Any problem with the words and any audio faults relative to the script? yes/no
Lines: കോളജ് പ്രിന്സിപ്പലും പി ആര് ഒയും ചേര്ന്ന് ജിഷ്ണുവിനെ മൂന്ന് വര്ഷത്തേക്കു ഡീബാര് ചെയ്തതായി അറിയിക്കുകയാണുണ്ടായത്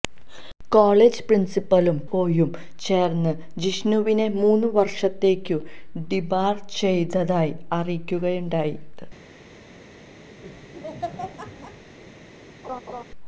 yes